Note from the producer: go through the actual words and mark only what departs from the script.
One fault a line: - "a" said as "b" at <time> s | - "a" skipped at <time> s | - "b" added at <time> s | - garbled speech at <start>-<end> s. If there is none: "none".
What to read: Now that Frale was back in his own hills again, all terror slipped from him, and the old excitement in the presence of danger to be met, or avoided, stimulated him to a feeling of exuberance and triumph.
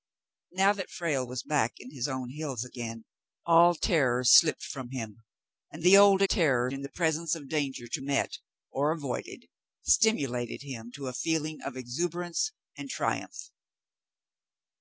- "excitement" said as "terror" at 6.2 s
- "be" skipped at 8.0 s